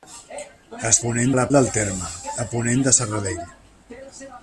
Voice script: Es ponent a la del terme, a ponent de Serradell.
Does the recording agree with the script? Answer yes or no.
yes